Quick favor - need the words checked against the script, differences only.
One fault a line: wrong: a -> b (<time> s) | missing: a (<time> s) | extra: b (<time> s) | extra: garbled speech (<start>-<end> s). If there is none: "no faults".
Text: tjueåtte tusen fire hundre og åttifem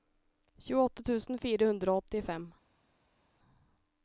no faults